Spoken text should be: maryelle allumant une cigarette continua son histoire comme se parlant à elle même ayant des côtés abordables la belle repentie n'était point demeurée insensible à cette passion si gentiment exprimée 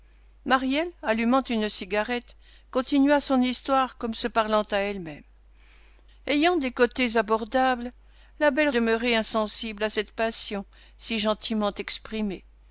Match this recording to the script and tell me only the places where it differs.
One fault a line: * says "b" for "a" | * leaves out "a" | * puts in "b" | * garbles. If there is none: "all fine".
* leaves out "repentie n'était point"